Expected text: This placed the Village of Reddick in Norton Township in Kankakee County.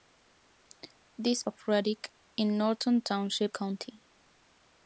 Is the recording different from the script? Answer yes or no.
yes